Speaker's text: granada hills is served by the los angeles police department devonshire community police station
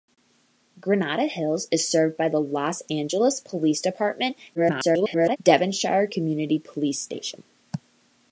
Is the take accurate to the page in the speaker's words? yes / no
no